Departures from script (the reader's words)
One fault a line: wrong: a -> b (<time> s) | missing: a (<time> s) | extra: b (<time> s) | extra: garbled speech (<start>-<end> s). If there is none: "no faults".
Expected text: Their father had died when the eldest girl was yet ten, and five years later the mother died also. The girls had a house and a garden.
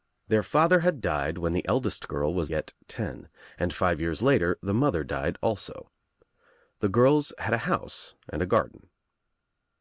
no faults